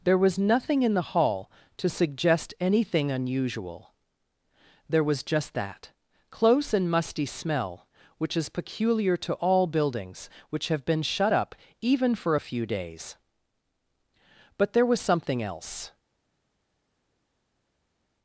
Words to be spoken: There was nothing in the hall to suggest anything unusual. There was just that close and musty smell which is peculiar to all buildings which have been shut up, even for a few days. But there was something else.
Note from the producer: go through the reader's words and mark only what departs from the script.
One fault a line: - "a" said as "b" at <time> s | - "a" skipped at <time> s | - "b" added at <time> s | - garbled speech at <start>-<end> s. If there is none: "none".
none